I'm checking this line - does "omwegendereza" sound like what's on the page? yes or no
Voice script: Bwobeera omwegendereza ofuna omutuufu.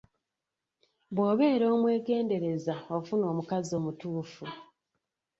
yes